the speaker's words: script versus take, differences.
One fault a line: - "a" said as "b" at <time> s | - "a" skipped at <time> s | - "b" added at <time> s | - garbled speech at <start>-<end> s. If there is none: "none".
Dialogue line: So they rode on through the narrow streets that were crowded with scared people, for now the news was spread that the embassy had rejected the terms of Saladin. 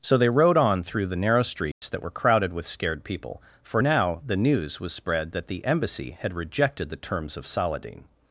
none